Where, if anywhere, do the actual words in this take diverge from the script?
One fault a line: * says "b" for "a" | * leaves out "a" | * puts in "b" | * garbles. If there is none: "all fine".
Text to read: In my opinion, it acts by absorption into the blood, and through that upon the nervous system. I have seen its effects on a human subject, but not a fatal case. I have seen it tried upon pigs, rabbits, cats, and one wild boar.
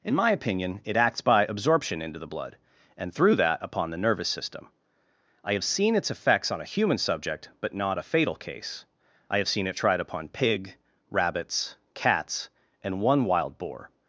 * says "pig" for "pigs"